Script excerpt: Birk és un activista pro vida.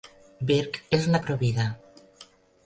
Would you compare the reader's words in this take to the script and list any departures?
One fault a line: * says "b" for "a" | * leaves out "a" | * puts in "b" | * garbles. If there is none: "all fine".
* leaves out "activista"